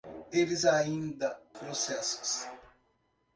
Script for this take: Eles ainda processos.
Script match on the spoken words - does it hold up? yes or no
yes